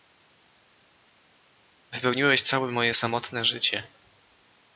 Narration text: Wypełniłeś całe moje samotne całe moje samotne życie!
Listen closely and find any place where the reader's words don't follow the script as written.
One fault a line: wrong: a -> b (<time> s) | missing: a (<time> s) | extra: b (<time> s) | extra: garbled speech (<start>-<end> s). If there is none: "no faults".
missing: całe moje samotne (3.4 s)